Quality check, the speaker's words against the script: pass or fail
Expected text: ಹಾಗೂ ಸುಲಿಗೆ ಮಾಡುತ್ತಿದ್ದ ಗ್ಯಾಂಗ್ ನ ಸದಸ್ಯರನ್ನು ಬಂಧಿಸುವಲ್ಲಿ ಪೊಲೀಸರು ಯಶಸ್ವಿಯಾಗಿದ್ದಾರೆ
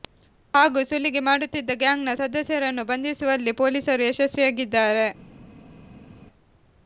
pass